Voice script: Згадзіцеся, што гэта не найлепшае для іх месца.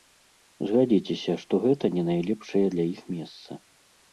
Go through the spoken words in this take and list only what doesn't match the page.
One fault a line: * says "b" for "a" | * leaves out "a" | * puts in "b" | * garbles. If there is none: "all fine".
all fine